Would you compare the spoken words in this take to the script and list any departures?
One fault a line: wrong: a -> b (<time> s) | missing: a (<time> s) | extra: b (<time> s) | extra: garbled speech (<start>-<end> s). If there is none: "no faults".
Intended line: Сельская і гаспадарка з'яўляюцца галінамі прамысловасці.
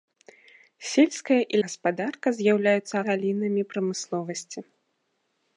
no faults